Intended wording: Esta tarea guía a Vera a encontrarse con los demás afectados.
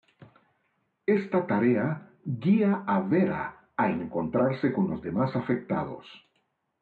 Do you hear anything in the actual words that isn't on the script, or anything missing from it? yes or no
no